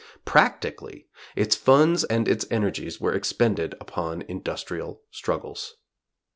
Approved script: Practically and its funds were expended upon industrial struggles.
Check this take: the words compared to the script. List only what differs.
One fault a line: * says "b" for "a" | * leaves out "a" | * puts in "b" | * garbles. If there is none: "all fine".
* puts in "its funds"
* says "energies" for "funds"